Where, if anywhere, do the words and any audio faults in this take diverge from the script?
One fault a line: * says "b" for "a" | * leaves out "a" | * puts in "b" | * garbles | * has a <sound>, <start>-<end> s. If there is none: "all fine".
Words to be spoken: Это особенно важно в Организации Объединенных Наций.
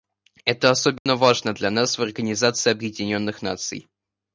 * has a dropout, 1.0-1.1 s
* puts in "для нас"